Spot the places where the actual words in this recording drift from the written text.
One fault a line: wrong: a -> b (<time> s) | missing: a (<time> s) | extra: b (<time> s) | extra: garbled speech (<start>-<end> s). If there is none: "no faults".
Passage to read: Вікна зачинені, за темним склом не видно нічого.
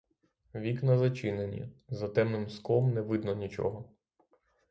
no faults